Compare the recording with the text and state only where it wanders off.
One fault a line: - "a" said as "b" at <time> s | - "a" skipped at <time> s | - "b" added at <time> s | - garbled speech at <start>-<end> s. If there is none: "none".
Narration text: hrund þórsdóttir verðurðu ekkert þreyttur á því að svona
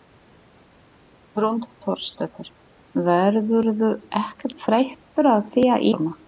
none